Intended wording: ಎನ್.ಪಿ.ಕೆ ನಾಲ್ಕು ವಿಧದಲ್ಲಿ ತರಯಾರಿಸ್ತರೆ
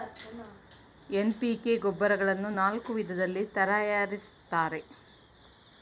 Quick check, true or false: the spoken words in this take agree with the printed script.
false